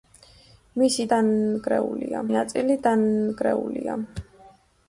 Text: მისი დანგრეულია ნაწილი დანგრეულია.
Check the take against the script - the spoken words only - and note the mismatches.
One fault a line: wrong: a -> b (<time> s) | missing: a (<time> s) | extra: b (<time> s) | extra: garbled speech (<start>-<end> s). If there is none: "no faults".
no faults